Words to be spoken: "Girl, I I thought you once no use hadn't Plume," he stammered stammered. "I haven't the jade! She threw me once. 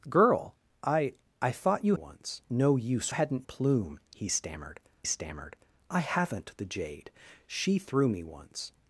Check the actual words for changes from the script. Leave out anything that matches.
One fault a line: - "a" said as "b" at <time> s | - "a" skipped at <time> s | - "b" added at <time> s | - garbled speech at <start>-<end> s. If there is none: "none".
none